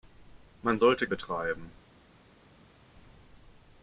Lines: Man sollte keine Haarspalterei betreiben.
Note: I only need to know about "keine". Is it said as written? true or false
false